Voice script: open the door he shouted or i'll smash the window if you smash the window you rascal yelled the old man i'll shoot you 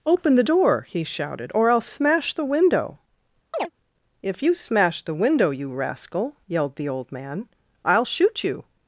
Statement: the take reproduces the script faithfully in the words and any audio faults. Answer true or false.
false